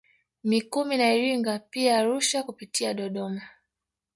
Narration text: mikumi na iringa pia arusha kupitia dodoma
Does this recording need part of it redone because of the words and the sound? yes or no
no